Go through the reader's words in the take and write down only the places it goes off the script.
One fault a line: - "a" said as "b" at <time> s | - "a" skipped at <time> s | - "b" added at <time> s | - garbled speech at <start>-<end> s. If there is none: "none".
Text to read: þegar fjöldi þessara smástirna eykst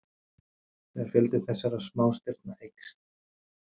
none